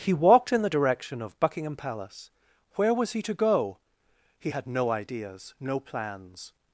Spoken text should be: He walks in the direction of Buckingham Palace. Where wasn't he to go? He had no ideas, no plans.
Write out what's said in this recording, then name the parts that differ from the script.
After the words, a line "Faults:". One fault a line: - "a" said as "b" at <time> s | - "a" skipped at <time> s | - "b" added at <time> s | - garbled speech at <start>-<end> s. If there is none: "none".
He walked in the direction of Buckingham Palace. Where was he to go? He had no ideas, no plans.
Faults:
- "walks" said as "walked" at 0.1 s
- "wasn't" said as "was" at 2.9 s